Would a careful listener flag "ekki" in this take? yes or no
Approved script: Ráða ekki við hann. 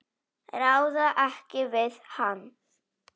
no